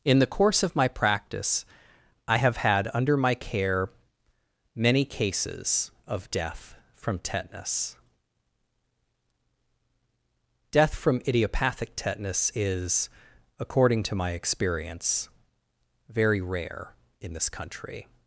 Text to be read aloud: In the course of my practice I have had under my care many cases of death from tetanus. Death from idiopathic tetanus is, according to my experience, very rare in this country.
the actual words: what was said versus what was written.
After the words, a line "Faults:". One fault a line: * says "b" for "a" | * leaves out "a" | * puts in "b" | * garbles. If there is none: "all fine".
In the course of my practice I have had under my care many cases of death from tetanus. Death from idiopathic tetanus is, according to my experience, very rare in this country.
Faults:
all fine